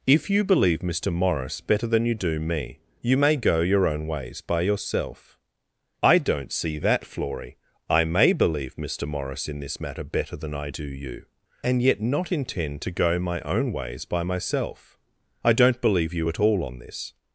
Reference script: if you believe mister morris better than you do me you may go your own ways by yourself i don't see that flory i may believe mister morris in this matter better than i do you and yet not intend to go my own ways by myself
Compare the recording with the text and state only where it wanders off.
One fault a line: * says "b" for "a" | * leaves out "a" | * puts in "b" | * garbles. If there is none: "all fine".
* puts in "i don't believe you at all on this"